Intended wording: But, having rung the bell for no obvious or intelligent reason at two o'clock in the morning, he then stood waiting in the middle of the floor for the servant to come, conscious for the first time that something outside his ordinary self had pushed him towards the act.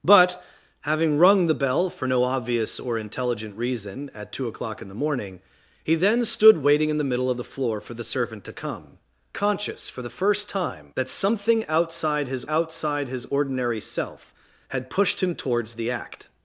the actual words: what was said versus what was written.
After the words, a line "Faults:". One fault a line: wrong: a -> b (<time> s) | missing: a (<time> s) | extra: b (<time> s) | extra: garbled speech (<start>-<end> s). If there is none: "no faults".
But, having rung the bell for no obvious or intelligent reason at two o'clock in the morning, he then stood waiting in the middle of the floor for the servant to come, conscious for the first time that something outside his outside his ordinary self had pushed him towards the act.
Faults:
extra: outside his (12.5 s)